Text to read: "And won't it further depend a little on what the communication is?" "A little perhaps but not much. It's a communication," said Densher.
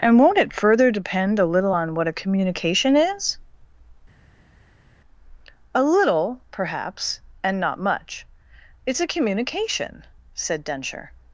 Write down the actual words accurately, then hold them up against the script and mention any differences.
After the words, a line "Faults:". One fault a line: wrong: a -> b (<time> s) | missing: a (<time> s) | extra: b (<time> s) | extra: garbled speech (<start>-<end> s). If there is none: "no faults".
"And won't it further depend a little on what a communication is?" "A little perhaps and not much. It's a communication," said Densher.
Faults:
wrong: the -> a (2.1 s)
wrong: but -> and (7.4 s)